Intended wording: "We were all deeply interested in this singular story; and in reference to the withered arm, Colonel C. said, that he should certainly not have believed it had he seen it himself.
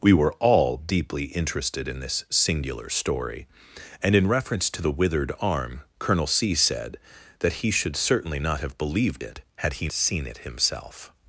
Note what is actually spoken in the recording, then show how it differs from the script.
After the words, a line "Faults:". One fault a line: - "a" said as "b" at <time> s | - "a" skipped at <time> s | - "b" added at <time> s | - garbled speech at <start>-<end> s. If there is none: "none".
"We were all deeply interested in this singular story; and in reference to the withered arm, Colonel C. said, that he should certainly not have believed it had he seen it himself.
Faults:
none